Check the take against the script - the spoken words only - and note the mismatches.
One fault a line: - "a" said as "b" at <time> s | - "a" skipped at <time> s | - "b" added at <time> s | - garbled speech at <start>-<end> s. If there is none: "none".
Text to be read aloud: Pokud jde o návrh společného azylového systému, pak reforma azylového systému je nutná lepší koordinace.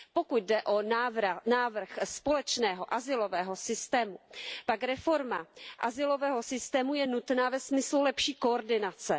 - "ve smyslu" added at 7.5 s